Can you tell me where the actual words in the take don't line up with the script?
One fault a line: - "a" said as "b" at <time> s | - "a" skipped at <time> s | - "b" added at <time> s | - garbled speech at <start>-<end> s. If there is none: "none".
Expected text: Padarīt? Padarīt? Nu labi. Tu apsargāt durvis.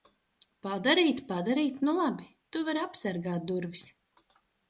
- "vari" added at 2.7 s